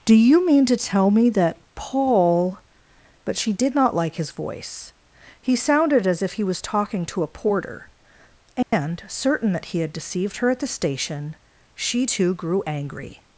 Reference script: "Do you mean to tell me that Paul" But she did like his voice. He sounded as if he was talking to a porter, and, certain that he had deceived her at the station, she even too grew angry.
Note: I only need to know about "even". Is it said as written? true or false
false